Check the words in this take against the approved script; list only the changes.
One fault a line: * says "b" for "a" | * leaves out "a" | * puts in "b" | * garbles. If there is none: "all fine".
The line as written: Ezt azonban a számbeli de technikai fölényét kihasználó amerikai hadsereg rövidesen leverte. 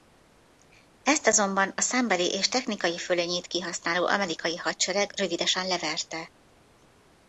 * says "és" for "de"